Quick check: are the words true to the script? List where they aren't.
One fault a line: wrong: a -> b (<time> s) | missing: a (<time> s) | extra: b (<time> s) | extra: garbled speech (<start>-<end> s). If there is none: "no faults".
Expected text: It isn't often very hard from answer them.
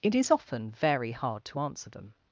wrong: isn't -> is (0.1 s)
wrong: from -> to (1.5 s)